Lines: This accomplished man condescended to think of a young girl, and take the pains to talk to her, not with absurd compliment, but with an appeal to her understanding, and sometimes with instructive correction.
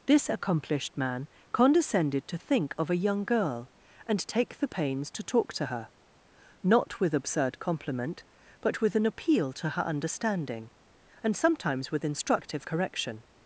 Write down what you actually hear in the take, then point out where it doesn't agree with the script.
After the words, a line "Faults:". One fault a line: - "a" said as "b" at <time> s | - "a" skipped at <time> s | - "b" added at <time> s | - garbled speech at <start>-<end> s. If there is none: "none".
This accomplished man condescended to think of a young girl, and take the pains to talk to her, not with absurd compliment, but with an appeal to her understanding, and sometimes with instructive correction.
Faults:
none